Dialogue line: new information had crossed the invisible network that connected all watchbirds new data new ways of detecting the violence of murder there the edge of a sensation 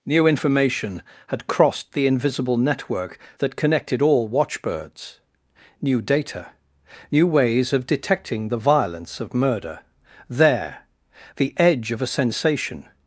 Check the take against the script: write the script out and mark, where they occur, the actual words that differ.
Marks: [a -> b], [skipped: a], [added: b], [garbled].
new information had crossed the invisible network that connected all watchbirds new data new ways of detecting the violence of murder there the edge of a sensation